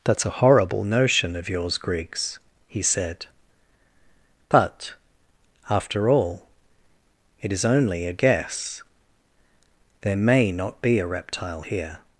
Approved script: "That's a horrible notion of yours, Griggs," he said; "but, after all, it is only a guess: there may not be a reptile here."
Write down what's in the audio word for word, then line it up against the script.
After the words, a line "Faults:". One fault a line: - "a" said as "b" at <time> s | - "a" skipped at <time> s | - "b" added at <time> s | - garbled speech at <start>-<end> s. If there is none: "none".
"That's a horrible notion of yours, Griggs," he said; "but, after all, it is only a guess: there may not be a reptile here."
Faults:
none